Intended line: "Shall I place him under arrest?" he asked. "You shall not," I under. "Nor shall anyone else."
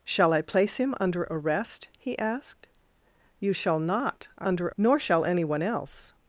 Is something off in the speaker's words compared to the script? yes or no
no